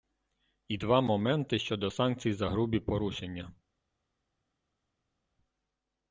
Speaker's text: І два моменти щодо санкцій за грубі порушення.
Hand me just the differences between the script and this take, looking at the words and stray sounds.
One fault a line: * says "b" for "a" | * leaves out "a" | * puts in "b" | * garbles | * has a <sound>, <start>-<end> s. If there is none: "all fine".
all fine